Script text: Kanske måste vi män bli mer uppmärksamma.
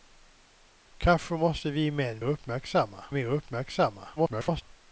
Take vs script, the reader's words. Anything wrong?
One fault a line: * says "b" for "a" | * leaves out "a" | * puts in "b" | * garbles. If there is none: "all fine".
* says "uppmärksamma" for "bli"
* garbles